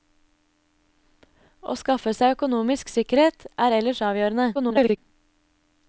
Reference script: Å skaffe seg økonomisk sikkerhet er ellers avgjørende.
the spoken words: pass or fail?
fail